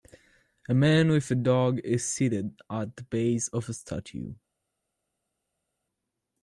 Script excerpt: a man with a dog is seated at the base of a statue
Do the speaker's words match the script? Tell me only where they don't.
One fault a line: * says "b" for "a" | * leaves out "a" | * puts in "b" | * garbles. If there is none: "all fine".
all fine